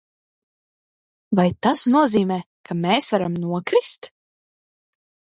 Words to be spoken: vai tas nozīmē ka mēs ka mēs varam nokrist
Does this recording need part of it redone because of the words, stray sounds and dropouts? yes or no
yes